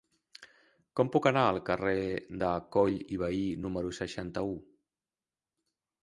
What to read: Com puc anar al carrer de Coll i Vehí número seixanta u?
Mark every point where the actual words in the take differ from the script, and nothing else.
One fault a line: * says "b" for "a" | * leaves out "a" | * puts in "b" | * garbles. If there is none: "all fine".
all fine